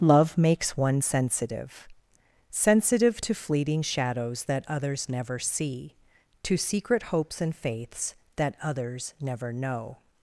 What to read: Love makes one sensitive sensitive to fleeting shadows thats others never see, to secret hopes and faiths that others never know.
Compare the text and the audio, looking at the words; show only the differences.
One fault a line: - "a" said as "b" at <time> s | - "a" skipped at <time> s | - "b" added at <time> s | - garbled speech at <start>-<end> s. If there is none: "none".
- "thats" said as "that" at 4.4 s